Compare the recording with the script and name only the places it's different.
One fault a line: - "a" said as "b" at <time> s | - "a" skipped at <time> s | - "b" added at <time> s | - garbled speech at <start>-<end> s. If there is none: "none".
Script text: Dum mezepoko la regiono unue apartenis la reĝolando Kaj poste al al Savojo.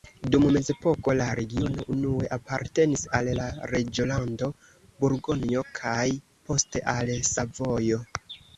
- "al" added at 3.2 s
- "Burgonjo" added at 5.0 s
- "al" skipped at 7.2 s